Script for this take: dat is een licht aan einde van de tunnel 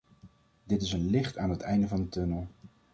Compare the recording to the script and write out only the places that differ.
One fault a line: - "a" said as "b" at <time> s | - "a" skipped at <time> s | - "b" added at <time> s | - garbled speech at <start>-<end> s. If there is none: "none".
- "dat" said as "dit" at 0.6 s
- "het" added at 1.5 s